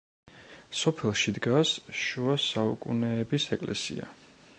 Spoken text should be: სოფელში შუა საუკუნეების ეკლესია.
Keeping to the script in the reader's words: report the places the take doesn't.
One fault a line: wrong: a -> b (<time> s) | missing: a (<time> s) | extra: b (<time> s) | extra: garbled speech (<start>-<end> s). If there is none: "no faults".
extra: დგას (1.4 s)